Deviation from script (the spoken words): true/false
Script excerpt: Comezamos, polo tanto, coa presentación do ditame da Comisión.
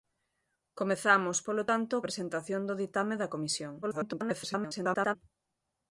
true